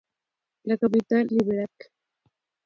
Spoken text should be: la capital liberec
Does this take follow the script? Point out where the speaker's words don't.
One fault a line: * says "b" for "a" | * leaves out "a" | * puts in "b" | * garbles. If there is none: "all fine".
all fine